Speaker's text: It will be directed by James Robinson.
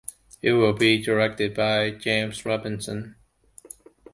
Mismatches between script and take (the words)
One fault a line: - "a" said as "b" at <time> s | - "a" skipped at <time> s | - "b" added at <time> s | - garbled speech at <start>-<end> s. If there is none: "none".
none